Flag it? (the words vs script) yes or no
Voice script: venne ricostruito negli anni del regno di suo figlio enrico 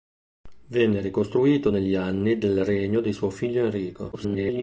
yes